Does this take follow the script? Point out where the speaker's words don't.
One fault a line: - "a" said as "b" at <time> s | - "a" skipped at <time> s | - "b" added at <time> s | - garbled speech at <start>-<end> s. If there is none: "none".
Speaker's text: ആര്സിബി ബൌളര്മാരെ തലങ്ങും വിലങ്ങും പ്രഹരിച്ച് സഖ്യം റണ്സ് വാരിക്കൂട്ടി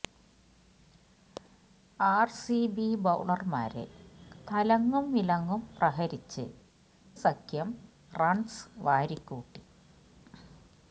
none